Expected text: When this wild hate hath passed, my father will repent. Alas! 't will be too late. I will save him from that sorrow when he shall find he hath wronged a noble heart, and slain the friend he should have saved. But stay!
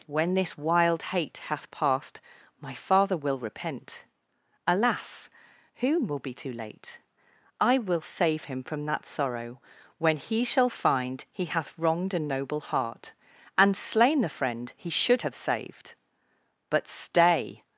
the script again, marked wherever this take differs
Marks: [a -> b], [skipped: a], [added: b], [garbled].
When this wild hate hath passed, my father will repent. Alas! ['t -> whom] will be too late. I will save him from that sorrow when he shall find he hath wronged a noble heart, and slain the friend he should have saved. But stay!